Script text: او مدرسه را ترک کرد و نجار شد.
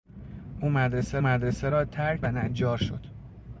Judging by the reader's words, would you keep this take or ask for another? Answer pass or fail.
fail